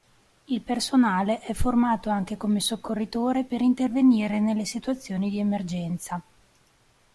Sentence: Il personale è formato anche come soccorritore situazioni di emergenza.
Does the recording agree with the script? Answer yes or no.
no